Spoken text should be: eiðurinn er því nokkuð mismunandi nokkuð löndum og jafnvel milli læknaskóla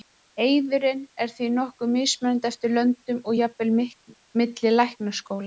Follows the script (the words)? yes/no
no